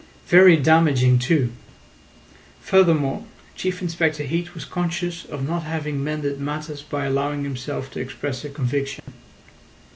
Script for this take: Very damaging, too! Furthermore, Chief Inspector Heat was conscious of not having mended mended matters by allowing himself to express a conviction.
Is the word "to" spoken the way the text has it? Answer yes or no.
yes